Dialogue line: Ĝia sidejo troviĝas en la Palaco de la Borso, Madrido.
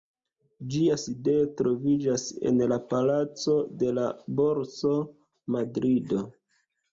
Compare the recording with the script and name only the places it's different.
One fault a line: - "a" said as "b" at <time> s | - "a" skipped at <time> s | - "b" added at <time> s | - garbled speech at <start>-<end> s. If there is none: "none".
none